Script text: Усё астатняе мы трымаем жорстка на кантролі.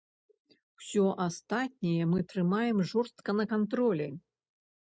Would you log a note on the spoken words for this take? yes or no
no